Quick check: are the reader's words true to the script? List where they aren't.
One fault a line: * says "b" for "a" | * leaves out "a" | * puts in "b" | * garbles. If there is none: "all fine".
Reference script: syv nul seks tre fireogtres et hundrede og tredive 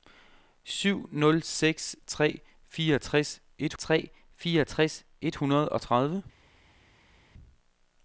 * puts in "tre fireogtres et"